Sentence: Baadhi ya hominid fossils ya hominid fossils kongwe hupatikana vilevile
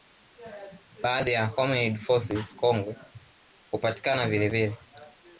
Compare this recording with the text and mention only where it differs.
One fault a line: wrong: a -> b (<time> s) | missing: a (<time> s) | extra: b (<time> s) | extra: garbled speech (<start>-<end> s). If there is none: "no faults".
missing: ya hominid fossils (2.5 s)